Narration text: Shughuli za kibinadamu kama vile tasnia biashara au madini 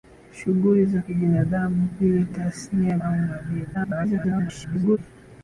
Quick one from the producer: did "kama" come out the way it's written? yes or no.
no